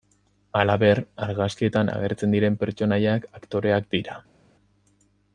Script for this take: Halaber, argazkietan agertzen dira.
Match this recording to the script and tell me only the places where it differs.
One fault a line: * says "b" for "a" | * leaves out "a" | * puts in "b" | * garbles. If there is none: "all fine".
* puts in "diren pertsonaiak aktoreak"